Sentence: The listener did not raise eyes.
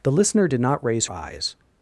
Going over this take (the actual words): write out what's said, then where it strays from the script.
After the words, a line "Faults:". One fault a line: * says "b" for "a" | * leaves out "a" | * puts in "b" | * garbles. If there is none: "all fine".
The listener did not raise eyes.
Faults:
all fine